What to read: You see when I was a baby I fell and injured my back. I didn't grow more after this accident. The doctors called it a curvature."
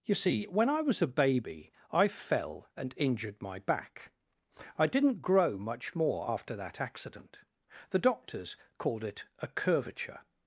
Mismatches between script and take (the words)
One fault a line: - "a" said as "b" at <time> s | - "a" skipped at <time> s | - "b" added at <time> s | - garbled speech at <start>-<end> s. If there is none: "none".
- "much" added at 5.6 s
- "this" said as "that" at 6.6 s